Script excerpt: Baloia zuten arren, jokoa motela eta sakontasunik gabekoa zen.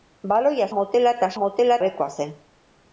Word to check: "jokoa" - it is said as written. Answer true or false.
false